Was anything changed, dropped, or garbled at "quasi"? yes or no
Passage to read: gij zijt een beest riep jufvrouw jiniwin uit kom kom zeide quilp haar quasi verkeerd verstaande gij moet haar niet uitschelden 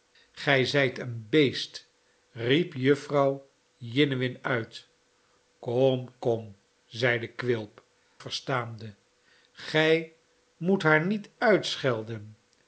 yes